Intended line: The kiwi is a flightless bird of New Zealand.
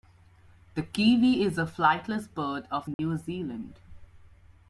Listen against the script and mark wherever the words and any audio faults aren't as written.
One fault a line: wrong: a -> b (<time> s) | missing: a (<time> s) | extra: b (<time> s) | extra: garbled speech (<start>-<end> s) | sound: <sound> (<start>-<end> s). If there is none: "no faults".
sound: dropout (2.9-3.0 s)